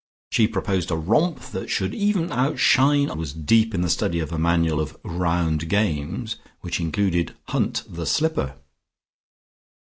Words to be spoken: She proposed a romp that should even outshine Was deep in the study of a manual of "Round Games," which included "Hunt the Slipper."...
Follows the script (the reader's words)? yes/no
yes